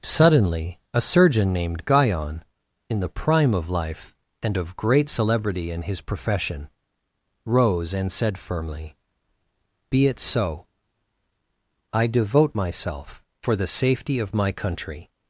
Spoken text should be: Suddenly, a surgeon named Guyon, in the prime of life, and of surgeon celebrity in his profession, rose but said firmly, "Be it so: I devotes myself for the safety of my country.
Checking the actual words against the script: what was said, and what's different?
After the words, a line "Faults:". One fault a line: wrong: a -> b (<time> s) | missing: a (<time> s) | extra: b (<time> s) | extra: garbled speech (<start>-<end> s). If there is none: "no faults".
Suddenly, a surgeon named Guyon, in the prime of life, and of great celebrity in his profession, rose and said firmly, "Be it so: I devote myself for the safety of my country.
Faults:
wrong: surgeon -> great (4.8 s)
wrong: but -> and (7.9 s)
wrong: devotes -> devote (12.1 s)